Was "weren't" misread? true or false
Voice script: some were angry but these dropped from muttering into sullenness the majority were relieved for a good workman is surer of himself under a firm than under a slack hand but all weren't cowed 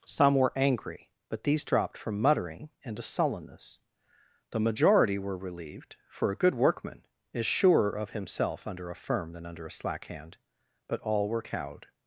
true